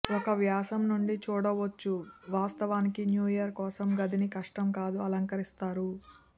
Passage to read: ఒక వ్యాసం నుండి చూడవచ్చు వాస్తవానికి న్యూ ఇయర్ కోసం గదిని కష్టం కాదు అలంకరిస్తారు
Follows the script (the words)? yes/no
yes